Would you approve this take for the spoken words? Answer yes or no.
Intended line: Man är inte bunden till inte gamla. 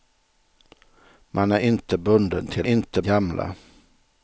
yes